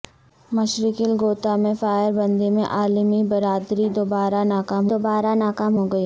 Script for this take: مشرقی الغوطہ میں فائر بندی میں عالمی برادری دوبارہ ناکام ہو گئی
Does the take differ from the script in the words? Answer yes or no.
yes